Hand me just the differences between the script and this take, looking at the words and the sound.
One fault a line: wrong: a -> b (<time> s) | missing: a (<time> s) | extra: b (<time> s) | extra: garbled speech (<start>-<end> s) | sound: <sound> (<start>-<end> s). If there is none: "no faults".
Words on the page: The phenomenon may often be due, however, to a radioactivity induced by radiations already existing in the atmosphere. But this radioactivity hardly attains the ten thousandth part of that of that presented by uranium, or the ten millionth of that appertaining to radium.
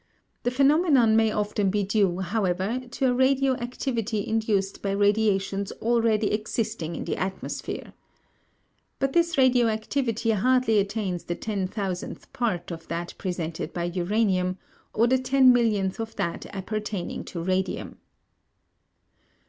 missing: of that (13.1 s)